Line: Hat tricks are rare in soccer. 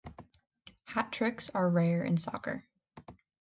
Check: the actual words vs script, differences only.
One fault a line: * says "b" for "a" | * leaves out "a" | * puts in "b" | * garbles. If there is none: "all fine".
all fine